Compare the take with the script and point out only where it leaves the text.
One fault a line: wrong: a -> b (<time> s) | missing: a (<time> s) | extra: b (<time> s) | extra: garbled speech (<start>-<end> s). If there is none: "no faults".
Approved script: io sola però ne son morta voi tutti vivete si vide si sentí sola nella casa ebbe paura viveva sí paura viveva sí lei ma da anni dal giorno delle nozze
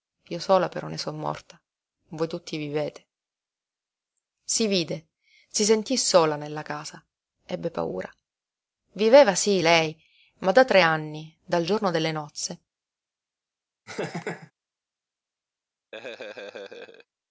missing: paura viveva sí (9.6 s)
extra: tre (10.6 s)